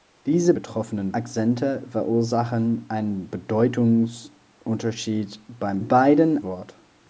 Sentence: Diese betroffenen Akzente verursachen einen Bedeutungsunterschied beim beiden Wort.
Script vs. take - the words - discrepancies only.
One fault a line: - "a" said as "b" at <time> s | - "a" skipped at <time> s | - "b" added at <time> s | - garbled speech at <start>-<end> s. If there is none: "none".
none